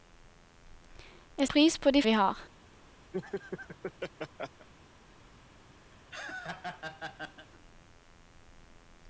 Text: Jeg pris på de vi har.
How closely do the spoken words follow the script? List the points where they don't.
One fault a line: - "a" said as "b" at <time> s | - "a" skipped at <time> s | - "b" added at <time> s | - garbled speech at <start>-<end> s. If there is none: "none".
none